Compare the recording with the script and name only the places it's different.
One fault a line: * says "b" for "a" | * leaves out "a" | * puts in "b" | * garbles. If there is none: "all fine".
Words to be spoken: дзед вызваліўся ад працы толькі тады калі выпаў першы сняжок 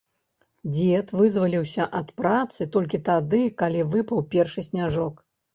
all fine